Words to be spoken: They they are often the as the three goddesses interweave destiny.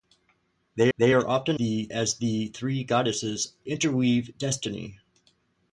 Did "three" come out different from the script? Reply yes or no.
no